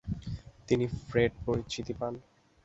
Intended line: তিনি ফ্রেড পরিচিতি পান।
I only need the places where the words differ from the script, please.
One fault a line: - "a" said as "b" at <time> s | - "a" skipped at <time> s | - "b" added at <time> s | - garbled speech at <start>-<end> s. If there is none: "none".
none